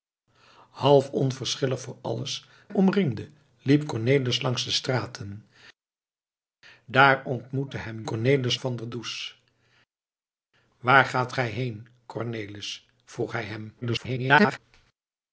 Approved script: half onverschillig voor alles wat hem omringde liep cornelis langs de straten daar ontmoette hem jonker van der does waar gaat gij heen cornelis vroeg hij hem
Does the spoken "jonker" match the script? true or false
false